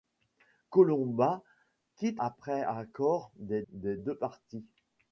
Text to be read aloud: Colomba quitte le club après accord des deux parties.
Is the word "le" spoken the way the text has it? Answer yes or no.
no